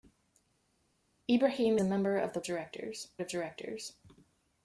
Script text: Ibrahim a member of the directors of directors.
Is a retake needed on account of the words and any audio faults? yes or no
no